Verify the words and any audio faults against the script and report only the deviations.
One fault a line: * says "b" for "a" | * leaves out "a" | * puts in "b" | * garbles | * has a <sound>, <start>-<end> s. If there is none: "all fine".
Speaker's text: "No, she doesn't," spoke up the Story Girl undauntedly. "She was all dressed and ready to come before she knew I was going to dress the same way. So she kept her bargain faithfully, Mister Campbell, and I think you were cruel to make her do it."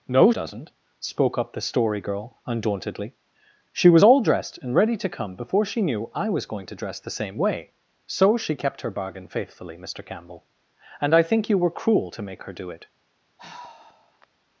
* leaves out "she"
* has a sigh, 13.4-14.3 s